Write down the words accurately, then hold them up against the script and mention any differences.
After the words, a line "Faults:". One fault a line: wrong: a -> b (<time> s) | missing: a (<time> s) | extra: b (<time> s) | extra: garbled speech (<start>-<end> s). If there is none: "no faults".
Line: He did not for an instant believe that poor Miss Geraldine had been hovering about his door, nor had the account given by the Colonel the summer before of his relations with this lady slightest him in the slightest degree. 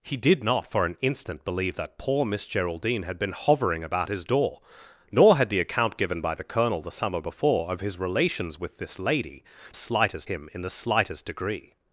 He did not for an instant believe that poor Miss Geraldine had been hovering about his door, nor had the account given by the Colonel the summer before of his relations with this lady slightest him in the slightest degree.
Faults:
no faults